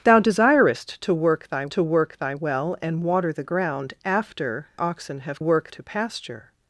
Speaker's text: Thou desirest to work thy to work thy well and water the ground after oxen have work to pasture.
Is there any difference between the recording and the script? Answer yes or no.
no